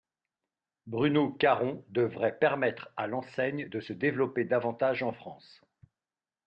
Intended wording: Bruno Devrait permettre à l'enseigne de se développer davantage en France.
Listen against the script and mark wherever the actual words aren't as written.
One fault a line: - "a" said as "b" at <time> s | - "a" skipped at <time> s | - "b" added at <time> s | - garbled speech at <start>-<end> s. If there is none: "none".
- "Caron" added at 1.3 s